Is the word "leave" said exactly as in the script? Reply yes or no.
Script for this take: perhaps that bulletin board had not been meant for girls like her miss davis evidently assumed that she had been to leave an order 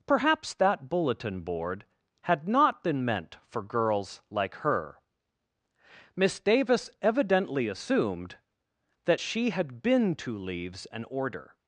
no